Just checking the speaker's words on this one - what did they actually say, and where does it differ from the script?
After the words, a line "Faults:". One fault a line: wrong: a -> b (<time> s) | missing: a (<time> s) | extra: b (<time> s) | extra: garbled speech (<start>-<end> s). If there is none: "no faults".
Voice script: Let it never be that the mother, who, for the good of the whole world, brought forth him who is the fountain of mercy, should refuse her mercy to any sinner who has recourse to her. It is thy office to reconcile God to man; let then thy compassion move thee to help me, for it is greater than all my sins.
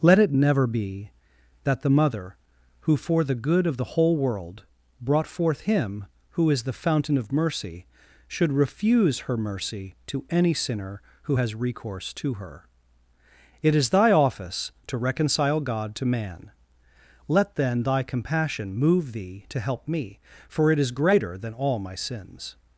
Let it never be that the mother, who, for the good of the whole world, brought forth him who is the fountain of mercy, should refuse her mercy to any sinner who has recourse to her. It is thy office to reconcile God to man; let then thy compassion move thee to help me, for it is greater than all my sins.
Faults:
no faults